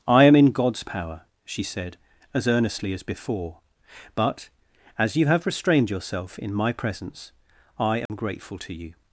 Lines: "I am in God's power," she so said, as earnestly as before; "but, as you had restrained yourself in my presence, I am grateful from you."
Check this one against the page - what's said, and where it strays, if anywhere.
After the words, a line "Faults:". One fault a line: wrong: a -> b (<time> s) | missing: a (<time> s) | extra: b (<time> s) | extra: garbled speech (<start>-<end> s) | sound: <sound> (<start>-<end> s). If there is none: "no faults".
"I am in God's power," she said, as earnestly as before; "but, as you have restrained yourself in my presence, I am grateful to you."
Faults:
missing: so (1.6 s)
wrong: had -> have (5.3 s)
sound: dropout (8.1-8.1 s)
wrong: from -> to (8.6 s)